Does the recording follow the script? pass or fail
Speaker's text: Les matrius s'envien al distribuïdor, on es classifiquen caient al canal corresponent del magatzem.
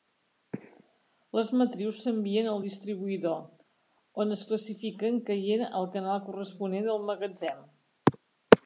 pass